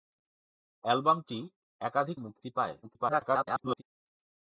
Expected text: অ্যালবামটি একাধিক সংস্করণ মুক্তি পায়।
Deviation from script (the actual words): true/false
true